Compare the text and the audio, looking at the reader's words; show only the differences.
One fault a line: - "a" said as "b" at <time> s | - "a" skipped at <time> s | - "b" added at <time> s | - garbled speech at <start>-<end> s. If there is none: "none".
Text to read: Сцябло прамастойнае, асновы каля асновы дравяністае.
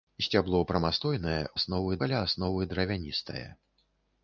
none